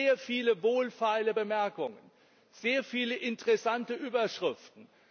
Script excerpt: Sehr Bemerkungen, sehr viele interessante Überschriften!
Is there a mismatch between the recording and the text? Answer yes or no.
yes